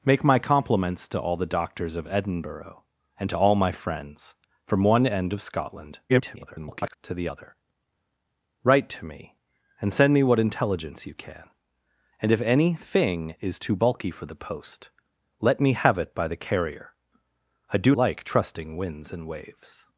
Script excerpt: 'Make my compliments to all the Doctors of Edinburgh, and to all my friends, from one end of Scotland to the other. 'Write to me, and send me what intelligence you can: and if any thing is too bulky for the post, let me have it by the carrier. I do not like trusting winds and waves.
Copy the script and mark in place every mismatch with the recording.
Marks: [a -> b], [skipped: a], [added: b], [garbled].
'Make my compliments to all the Doctors of Edinburgh, and to all my friends, from one end of Scotland [garbled] to the other. 'Write to me, and send me what intelligence you can: and if any thing is too bulky for the post, let me have it by the carrier. I do [skipped: not] like trusting winds and waves.